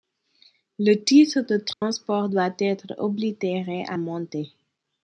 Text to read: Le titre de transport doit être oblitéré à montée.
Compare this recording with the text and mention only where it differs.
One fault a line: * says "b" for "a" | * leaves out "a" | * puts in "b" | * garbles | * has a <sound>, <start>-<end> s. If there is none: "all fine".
* has a dropout, 1.7-1.8 s